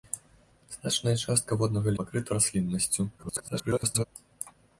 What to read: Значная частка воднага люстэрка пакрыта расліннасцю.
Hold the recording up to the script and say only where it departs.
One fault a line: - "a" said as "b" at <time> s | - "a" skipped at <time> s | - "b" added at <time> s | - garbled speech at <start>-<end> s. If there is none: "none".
- "люстэрка" skipped at 1.9 s
- garbled speech at 3.2-4.0 s